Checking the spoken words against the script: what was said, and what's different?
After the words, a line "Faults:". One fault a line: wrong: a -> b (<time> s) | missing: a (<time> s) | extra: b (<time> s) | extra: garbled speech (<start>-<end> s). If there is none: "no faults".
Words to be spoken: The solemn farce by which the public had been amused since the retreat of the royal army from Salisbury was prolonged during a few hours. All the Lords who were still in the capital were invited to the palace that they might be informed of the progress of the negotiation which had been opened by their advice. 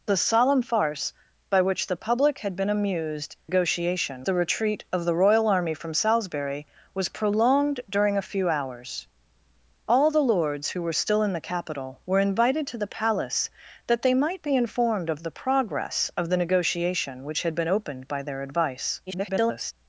The solemn farce by which the public had been amused negotiation the retreat of the royal army from Salisbury was prolonged during a few hours. All the Lords who were still in the capital were invited to the palace that they might be informed of the progress of the negotiation which had been opened by their advice. [garbled]
Faults:
wrong: since -> negotiation (3.5 s)
extra: garbled speech (19.1-19.7 s)